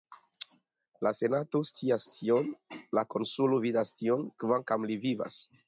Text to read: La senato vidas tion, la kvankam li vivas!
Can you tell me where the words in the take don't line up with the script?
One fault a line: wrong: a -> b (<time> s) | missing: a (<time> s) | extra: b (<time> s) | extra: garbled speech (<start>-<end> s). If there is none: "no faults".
wrong: vidas -> scias (1.7 s)
extra: konsulo vidas tion (3.2 s)